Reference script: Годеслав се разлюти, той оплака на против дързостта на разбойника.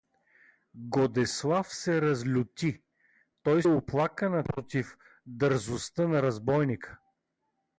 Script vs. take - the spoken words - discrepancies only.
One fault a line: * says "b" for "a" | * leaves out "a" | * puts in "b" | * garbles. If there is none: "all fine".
all fine